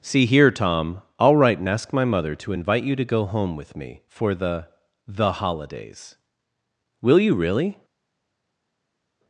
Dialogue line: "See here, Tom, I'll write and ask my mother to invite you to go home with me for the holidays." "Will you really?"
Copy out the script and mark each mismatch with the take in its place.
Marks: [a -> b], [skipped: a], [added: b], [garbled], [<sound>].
"See here, Tom, I'll write and ask my mother to invite you to go home with me for the [added: the] holidays." "Will you really?"